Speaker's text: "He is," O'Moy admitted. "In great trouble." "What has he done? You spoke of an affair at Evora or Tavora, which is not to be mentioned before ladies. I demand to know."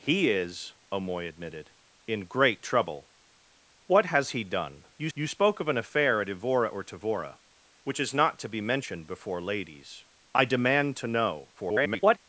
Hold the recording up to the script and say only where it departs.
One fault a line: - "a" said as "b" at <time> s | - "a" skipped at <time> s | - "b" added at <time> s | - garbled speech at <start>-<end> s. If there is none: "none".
- "you" added at 5.1 s
- garbled speech at 11.6-12.2 s